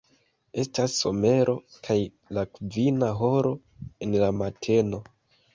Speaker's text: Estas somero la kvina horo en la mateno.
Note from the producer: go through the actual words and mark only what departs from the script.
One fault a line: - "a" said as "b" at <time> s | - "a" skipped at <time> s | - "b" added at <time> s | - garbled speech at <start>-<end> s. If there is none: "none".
- "kaj" added at 1.9 s